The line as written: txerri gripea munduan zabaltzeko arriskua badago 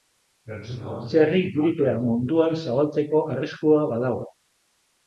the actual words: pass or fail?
pass